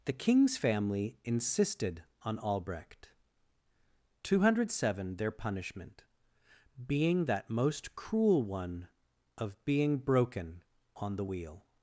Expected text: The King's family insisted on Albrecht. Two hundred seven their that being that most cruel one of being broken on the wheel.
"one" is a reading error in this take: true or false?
false